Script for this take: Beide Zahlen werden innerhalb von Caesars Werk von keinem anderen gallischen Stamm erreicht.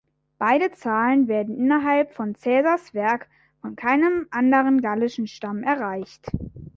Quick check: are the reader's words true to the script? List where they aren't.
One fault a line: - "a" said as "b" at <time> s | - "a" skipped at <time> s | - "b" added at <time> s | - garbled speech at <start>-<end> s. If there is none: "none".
none